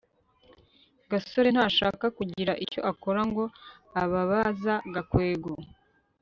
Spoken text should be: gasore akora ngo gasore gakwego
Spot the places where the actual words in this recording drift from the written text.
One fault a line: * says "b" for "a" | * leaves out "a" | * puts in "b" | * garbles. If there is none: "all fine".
* puts in "ntashaka kugira icyo"
* says "ababaza" for "gasore"